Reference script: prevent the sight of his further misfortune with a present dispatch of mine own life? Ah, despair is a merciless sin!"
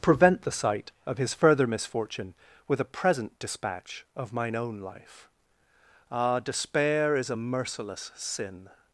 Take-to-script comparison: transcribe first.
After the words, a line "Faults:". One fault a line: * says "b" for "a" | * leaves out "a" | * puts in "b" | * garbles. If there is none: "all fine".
prevent the sight of his further misfortune with a present dispatch of mine own life? Ah, despair is a merciless sin!"
Faults:
all fine